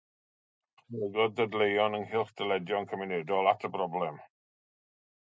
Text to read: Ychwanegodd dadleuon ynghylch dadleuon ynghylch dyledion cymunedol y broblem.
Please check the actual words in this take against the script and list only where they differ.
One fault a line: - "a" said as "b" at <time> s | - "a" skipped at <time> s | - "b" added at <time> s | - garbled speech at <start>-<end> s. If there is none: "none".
- "dadleuon ynghylch" skipped at 2.3 s
- "at" added at 3.5 s